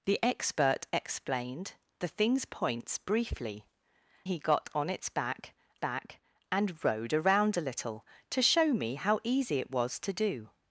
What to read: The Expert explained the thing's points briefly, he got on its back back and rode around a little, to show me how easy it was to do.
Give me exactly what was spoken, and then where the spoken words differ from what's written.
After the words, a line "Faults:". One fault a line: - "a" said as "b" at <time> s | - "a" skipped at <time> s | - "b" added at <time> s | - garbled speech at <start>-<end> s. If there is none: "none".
The Expert explained the thing's points briefly, he got on its back back and rode around a little, to show me how easy it was to do.
Faults:
none